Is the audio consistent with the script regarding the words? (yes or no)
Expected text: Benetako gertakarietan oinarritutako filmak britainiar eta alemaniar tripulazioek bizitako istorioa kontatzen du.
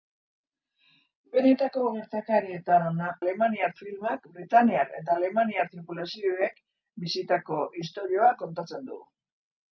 no